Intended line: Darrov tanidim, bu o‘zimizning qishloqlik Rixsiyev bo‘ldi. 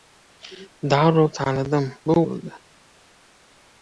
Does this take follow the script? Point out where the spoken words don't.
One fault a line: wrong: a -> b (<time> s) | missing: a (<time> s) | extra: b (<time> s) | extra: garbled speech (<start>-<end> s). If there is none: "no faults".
missing: o‘zimizning qishloqlik Rixsiyev (2.2 s)